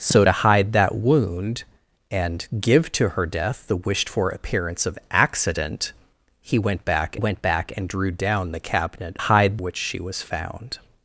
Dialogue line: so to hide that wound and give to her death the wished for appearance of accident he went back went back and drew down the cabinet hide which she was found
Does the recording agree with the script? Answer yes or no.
yes